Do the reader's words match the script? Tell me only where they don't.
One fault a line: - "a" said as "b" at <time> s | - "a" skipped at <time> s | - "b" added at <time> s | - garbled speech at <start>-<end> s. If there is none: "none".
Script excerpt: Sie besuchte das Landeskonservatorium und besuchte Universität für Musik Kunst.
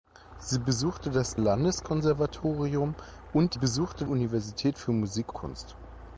none